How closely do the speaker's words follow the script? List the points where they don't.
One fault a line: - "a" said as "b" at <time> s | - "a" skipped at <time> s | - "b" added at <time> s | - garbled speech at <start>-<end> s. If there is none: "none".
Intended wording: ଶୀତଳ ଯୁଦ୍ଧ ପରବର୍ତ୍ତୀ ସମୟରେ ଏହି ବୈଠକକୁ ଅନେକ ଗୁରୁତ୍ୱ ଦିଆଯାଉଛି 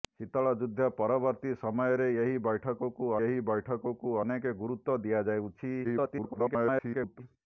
- "ଏହି ବୈଠକକୁ" added at 3.3 s
- garbled speech at 5.8-7.2 s